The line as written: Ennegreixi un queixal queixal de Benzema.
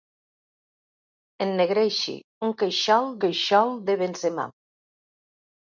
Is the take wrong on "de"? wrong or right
right